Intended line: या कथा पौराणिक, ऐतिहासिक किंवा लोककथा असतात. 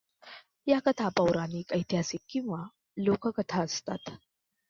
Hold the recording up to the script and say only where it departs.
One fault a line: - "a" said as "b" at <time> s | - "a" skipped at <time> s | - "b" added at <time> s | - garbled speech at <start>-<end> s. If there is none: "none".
none